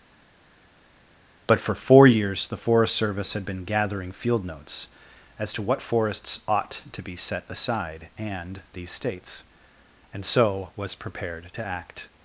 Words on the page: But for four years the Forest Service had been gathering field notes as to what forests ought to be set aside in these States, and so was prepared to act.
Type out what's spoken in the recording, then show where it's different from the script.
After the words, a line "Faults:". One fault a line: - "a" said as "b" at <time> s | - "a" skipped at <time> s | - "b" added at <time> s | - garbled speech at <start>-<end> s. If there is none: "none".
But for four years the Forest Service had been gathering field notes as to what forests ought to be set aside and these States, and so was prepared to act.
Faults:
- "in" said as "and" at 8.2 s